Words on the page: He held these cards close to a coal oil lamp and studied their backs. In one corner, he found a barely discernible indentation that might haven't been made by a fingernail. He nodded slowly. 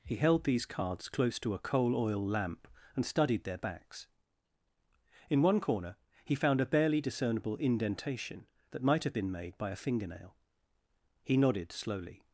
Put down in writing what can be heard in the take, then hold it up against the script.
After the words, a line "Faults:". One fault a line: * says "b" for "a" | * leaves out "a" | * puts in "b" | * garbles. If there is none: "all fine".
He held these cards close to a coal oil lamp and studied their backs. In one corner, he found a barely discernible indentation that might have been made by a fingernail. He nodded slowly.
Faults:
* says "have" for "haven't"